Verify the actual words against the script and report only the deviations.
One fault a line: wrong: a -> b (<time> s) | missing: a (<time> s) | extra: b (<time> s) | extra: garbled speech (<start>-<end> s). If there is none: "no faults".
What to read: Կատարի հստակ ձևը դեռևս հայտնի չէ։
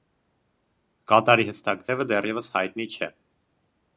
no faults